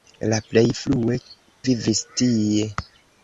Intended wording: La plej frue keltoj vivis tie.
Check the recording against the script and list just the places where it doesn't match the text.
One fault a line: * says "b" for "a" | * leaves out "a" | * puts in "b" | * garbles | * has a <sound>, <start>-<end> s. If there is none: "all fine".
* leaves out "keltoj"